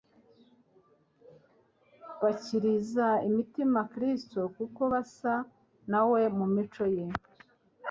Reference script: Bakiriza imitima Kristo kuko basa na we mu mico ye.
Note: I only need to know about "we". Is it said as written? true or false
true